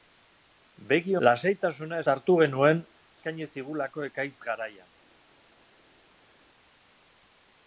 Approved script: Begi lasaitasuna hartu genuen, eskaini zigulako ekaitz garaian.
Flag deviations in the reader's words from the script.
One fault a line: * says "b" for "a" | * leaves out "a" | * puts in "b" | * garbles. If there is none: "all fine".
all fine